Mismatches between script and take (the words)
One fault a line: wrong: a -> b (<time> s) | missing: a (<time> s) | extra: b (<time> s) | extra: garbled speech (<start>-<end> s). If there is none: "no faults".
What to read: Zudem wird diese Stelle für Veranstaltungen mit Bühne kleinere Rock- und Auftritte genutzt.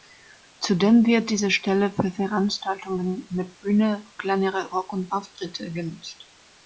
no faults